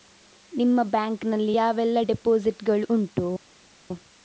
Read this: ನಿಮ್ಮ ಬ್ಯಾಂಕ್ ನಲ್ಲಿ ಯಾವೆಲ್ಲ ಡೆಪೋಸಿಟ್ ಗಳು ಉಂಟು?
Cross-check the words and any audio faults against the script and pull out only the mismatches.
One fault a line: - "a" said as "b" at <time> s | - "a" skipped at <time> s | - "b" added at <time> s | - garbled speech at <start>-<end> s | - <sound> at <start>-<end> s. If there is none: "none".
none